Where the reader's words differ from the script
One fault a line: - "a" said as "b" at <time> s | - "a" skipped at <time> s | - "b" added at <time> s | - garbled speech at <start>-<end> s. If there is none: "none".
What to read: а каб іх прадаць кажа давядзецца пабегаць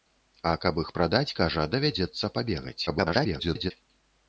- garbled speech at 2.9-3.7 s